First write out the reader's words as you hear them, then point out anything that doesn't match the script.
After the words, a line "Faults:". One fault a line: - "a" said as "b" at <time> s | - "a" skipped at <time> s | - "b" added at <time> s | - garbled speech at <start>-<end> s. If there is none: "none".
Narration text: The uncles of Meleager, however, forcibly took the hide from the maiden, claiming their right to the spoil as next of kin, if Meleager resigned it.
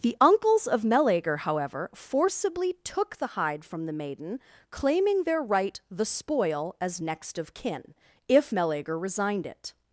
The uncles of Meleager, however, forcibly took the hide from the maiden, claiming their right the spoil as next of kin, if Meleager resigned it.
Faults:
- "to" skipped at 5.8 s